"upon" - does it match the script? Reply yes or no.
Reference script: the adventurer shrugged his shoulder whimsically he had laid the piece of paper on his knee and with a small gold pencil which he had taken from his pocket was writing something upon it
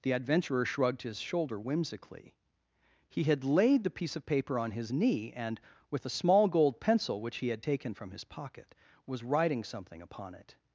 yes